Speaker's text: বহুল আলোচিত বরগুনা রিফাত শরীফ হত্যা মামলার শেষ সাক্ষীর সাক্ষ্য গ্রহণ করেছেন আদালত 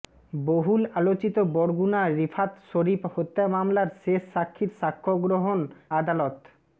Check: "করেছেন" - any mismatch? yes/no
yes